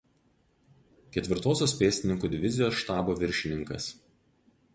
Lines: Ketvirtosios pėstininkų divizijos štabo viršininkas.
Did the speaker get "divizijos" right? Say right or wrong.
right